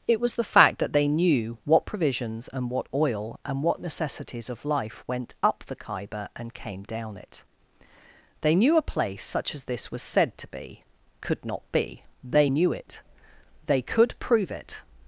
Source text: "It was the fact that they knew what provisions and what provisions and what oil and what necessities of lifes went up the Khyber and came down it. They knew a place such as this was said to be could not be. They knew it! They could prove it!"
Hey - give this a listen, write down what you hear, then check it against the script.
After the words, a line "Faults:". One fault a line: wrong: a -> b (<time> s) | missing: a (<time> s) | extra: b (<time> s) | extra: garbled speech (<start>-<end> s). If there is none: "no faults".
"It was the fact that they knew what provisions and what oil and what necessities of life went up the Khyber and came down it. They knew a place such as this was said to be could not be. They knew it! They could prove it!"
Faults:
missing: provisions and what (2.9 s)
wrong: lifes -> life (4.7 s)